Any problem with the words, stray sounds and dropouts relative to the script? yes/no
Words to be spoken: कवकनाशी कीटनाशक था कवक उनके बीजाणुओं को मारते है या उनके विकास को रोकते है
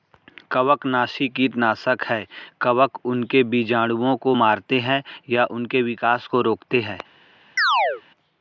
yes